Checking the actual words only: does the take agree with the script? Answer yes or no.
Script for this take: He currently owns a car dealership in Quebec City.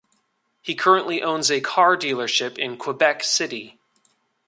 yes